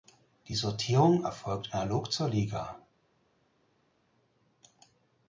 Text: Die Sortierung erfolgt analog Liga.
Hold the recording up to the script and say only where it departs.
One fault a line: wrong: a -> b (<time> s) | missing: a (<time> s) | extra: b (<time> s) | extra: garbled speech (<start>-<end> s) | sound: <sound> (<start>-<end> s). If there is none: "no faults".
extra: zur (2.1 s)